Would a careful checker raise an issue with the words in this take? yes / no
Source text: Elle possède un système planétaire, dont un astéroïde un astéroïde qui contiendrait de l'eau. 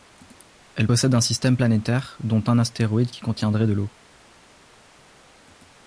yes